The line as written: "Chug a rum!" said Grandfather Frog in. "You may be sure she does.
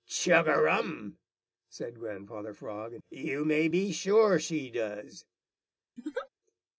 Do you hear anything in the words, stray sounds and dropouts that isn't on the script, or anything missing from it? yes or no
yes